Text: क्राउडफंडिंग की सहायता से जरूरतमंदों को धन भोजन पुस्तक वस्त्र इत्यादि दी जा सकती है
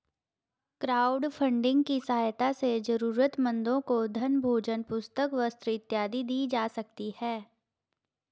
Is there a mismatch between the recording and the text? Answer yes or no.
no